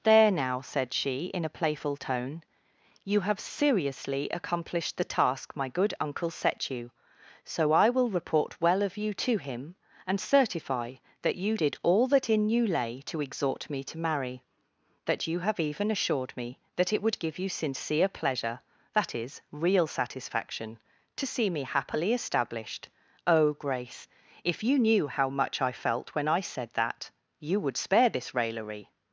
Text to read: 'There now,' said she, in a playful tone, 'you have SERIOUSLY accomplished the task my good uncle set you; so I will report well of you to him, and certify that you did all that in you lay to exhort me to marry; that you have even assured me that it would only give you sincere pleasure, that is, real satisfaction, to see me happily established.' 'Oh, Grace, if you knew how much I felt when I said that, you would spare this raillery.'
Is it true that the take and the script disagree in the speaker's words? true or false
true